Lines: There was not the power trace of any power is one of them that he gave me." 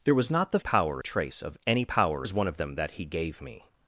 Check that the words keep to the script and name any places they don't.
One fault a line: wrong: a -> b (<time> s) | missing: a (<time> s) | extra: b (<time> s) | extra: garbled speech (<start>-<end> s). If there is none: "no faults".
no faults